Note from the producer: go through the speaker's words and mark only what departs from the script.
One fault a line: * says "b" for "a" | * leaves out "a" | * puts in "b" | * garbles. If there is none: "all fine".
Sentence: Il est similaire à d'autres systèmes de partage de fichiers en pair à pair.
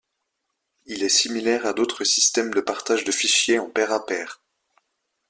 all fine